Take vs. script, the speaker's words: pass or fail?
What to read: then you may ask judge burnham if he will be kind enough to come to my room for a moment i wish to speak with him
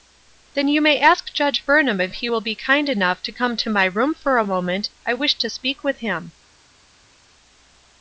pass